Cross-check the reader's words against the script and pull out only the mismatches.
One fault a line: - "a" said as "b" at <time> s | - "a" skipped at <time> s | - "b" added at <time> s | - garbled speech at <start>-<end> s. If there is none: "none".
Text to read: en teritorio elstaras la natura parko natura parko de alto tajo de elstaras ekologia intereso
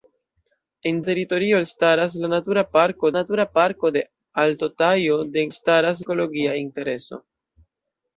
none